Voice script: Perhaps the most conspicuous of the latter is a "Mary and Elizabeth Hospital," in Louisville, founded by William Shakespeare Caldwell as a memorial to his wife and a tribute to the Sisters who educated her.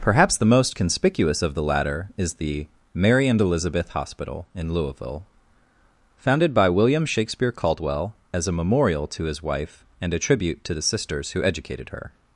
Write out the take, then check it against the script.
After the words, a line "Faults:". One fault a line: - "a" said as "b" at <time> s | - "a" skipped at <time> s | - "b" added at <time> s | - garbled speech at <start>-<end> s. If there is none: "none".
Perhaps the most conspicuous of the latter is the "Mary and Elizabeth Hospital," in Louisville, founded by William Shakespeare Caldwell as a memorial to his wife and a tribute to the Sisters who educated her.
Faults:
- "a" said as "the" at 2.3 s